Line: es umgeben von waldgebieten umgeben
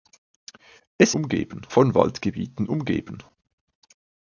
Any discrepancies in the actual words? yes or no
no